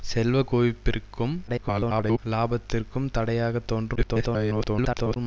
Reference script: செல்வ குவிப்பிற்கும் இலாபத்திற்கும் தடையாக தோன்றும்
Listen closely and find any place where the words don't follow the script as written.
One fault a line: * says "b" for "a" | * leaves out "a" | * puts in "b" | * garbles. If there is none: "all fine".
* garbles
* garbles